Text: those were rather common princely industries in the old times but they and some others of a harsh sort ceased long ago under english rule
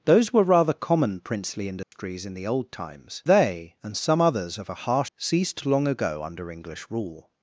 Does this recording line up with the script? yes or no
no